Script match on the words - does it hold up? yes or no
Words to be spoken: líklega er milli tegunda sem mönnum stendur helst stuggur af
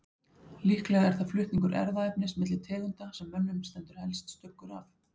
no